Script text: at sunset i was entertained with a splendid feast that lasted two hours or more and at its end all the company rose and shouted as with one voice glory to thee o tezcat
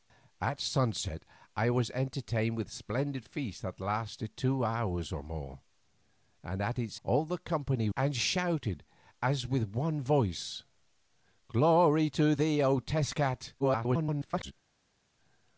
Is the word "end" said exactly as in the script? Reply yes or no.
no